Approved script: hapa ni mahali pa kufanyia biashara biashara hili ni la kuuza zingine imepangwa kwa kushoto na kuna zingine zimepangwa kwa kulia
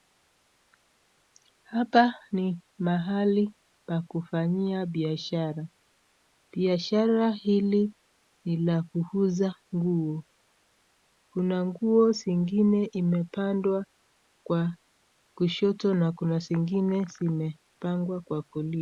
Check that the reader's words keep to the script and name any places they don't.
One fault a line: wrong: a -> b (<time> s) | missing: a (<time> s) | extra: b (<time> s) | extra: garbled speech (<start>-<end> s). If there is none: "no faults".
extra: nguo kuna nguo (9.8 s)